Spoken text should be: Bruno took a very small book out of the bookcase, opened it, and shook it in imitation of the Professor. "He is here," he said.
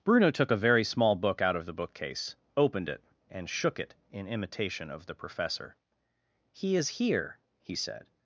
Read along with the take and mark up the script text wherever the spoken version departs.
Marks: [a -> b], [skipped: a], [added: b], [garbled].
Bruno took a very small book out of the bookcase, opened it, and shook it in imitation of the Professor. "He is here," he said.